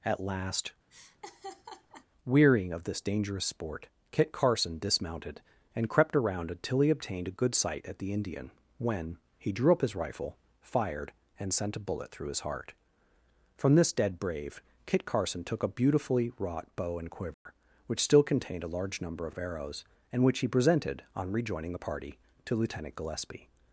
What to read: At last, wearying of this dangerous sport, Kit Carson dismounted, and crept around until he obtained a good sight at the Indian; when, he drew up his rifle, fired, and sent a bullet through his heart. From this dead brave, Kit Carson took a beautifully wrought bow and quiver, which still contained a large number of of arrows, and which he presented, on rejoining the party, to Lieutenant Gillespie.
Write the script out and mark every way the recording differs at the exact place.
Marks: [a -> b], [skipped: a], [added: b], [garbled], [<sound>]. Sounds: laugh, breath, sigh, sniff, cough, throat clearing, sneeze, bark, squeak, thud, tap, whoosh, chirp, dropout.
At last, [laugh] wearying of this dangerous sport, Kit Carson dismounted, and crept around until he obtained a good sight at the Indian; when, he drew up his rifle, fired, and sent a bullet through his heart. From this dead brave, Kit Carson took a beautifully wrought bow and quiver, [dropout] which still contained a large number of of arrows, and which he presented, on rejoining the party, to Lieutenant Gillespie.